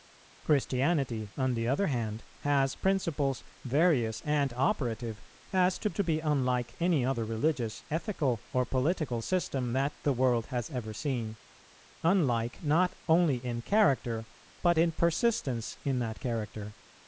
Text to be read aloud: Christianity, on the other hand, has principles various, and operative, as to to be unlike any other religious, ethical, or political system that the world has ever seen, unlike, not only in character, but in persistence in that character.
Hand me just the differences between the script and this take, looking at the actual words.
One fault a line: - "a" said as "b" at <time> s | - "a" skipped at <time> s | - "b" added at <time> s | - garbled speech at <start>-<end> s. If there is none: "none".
none